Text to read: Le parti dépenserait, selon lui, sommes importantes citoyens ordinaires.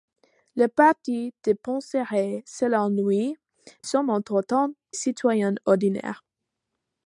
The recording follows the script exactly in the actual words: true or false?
true